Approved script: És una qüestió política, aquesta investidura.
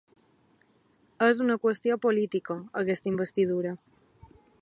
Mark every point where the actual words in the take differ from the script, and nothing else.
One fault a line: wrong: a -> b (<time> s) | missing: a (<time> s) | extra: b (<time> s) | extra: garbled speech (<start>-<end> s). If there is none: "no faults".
no faults